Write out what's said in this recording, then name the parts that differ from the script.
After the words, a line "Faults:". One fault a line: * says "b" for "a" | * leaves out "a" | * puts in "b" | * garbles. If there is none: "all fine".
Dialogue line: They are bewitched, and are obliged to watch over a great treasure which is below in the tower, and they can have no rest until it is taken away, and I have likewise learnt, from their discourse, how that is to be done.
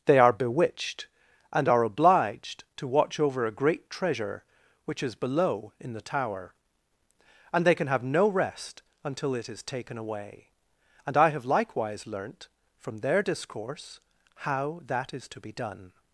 They are bewitched, and are obliged to watch over a great treasure which is below in the tower, and they can have no rest until it is taken away, and I have likewise learnt, from their discourse, how that is to be done.
Faults:
all fine